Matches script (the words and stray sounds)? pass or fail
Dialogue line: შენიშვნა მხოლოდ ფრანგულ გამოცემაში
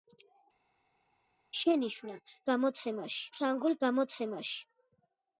fail